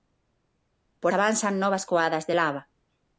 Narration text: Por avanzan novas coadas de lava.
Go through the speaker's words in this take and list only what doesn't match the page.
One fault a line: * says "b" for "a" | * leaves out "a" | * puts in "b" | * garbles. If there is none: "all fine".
all fine